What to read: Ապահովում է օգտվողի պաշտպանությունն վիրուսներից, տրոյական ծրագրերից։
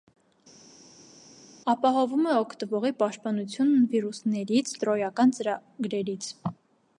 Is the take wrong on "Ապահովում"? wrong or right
right